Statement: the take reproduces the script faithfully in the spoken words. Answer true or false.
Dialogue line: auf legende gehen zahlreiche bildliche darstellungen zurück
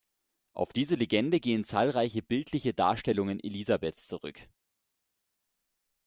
false